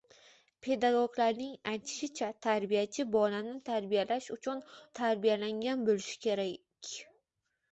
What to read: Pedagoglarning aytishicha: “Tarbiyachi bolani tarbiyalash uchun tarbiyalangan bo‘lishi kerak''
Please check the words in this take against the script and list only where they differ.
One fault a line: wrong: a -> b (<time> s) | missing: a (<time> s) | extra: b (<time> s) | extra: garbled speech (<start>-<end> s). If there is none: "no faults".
no faults